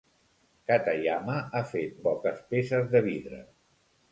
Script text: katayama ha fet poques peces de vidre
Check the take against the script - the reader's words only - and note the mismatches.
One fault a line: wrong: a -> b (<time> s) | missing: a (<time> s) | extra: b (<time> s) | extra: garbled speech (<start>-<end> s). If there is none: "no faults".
no faults